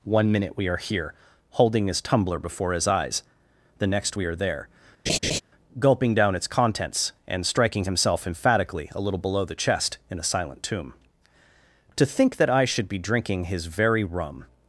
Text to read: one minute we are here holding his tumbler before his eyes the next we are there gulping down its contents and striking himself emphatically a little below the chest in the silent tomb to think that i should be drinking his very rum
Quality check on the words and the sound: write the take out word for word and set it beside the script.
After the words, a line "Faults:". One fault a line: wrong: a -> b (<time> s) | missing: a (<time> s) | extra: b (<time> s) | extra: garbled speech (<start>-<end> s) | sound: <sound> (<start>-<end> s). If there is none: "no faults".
one minute we are here holding his tumbler before his eyes the next we are there gulping down its contents and striking himself emphatically a little below the chest in a silent tomb to think that i should be drinking his very rum
Faults:
sound: laugh (5.1-5.4 s)
wrong: the -> a (10.2 s)